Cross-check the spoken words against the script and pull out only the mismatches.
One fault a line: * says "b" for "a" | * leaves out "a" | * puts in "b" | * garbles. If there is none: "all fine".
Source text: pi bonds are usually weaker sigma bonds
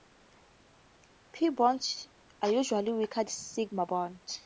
all fine